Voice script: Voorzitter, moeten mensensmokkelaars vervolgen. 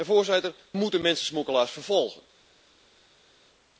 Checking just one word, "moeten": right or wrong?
right